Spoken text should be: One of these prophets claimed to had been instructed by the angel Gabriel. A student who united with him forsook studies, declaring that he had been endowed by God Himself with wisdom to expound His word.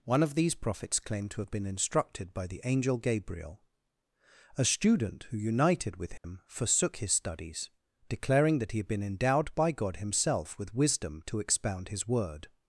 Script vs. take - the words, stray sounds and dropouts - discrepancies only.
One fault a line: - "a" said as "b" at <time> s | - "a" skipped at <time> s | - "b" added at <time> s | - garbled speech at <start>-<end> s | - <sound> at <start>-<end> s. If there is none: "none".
- "had" said as "have" at 1.4 s
- dropout at 6.2-6.2 s
- "his" added at 7.0 s